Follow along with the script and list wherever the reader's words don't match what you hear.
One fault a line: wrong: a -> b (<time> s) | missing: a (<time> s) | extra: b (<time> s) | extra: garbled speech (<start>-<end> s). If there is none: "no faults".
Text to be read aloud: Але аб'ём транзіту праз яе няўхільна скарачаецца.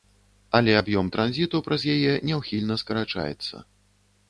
no faults